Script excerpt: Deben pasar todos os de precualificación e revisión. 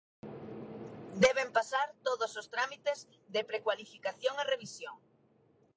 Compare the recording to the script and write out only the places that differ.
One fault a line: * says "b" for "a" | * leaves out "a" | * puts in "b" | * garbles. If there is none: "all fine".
* puts in "trámites"